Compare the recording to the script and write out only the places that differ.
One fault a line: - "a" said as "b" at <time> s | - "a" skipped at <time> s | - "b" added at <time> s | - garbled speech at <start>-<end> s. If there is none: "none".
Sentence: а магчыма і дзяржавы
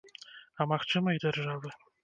none